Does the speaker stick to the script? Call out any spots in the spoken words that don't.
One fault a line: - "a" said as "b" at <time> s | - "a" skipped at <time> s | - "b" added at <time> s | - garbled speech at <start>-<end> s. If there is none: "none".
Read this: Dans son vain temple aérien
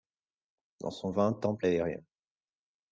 none